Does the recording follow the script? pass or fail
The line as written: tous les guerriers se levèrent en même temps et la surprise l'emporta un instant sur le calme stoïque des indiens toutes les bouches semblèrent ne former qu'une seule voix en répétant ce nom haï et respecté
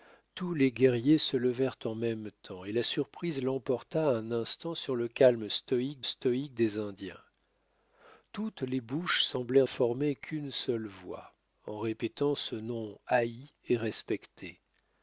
fail